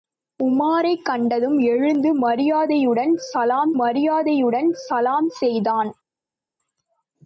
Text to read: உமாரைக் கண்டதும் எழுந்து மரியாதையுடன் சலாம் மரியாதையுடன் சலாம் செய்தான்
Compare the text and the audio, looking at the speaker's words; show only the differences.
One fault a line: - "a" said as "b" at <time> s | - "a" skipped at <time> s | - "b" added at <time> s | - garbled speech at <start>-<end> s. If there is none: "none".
none